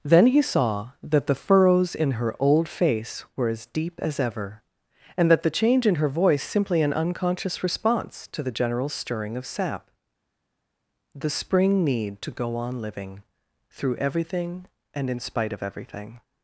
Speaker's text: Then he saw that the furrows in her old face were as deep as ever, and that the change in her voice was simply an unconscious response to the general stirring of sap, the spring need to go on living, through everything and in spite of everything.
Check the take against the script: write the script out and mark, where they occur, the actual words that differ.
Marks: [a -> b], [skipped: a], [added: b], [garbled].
Then he saw that the furrows in her old face were as deep as ever, and that the change in her voice [skipped: was] simply an unconscious response to the general stirring of sap, the spring need to go on living, through everything and in spite of everything.